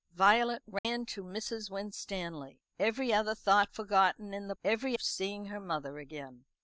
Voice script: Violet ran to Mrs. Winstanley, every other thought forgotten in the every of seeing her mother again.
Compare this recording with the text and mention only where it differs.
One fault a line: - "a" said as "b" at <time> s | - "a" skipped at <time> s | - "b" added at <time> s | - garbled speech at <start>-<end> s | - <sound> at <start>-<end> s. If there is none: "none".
- dropout at 0.8-0.8 s